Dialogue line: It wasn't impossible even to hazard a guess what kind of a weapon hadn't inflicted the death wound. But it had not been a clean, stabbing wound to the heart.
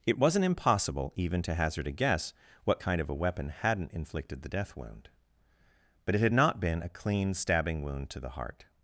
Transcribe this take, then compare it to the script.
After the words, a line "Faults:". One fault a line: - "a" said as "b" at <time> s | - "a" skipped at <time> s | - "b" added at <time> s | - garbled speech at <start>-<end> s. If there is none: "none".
It wasn't impossible even to hazard a guess what kind of a weapon hadn't inflicted the death wound. But it had not been a clean, stabbing wound to the heart.
Faults:
none